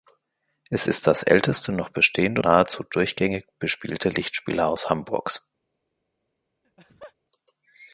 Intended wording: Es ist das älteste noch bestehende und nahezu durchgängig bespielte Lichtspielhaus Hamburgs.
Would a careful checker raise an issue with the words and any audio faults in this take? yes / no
yes